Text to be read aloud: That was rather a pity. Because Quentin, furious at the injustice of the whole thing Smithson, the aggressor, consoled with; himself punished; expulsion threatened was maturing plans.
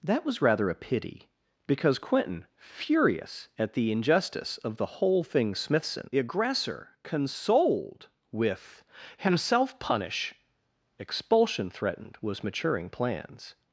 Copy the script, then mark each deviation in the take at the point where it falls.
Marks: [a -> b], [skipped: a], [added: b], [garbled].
That was rather a pity. Because Quentin, furious at the injustice of the whole thing Smithson, the aggressor, consoled with; himself [punished; -> punish] expulsion threatened was maturing plans.